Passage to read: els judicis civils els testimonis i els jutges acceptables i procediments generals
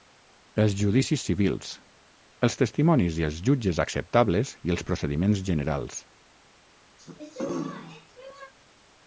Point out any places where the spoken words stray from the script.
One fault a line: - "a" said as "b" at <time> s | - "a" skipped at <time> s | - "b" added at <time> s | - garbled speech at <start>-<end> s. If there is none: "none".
- "els" added at 4.8 s